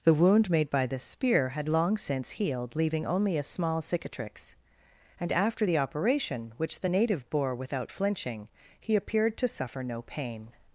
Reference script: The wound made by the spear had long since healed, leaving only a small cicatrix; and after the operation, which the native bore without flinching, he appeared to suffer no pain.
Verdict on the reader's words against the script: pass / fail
pass